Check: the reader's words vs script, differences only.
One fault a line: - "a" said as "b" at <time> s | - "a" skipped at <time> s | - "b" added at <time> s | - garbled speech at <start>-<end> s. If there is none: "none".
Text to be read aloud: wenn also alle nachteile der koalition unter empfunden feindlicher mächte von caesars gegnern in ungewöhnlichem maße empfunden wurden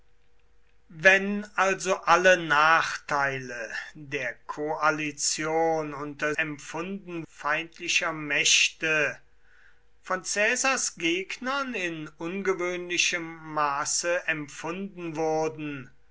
none